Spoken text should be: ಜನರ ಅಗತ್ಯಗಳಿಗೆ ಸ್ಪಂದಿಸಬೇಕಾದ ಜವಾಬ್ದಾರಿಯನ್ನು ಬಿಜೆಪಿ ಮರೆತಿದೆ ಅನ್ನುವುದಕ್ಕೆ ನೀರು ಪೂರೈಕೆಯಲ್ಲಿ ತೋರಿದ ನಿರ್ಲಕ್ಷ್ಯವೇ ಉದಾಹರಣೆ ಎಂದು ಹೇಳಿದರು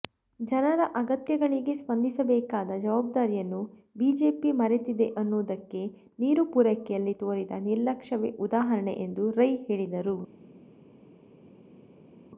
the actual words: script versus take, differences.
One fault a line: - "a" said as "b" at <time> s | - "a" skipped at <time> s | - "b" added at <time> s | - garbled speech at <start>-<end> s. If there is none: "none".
- "ರೈ" added at 9.3 s